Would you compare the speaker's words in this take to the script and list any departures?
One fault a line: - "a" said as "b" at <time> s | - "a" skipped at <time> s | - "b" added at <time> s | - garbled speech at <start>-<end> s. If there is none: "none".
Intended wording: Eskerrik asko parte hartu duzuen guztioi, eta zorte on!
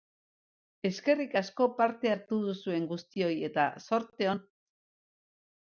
none